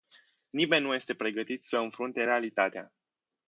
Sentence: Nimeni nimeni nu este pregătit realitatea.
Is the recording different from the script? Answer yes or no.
yes